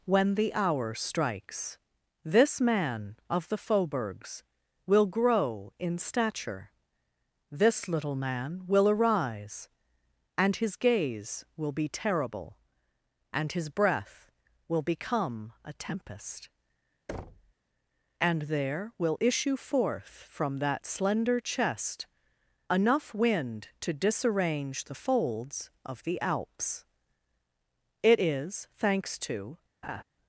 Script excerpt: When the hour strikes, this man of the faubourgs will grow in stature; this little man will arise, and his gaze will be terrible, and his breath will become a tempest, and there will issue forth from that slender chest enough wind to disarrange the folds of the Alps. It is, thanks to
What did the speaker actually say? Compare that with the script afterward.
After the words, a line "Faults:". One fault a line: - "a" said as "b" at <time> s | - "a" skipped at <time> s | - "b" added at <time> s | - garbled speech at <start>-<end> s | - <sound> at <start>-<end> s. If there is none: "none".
When the hour strikes, this man of the faubourgs will grow in stature; this little man will arise, and his gaze will be terrible, and his breath will become a tempest, and there will issue forth from that slender chest enough wind to disarrange the folds of the Alps. It is, thanks to
Faults:
- thud at 17.1-17.5 s
- laugh at 29.8-30.0 s